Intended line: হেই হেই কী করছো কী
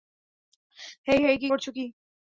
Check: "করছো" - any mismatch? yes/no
no